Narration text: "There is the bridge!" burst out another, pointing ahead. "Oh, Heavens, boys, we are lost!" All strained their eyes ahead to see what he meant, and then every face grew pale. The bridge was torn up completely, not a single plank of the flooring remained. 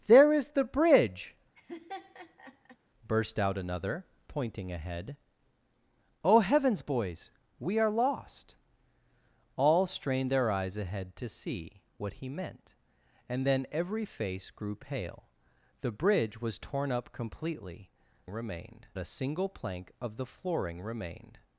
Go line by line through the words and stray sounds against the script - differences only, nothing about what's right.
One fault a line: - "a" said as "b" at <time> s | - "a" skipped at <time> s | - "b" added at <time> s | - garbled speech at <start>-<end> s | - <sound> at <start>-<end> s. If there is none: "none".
- laugh at 1.6-2.8 s
- "not" said as "remained" at 18.3 s